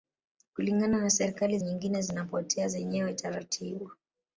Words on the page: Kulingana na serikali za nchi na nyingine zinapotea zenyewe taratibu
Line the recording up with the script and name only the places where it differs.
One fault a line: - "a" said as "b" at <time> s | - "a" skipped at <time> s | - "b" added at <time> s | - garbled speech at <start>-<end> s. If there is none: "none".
- "za nchi na" skipped at 1.6 s